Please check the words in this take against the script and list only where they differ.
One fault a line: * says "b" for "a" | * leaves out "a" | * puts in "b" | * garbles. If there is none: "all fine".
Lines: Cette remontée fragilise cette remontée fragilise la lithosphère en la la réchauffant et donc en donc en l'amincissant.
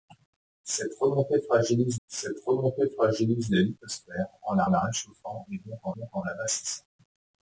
all fine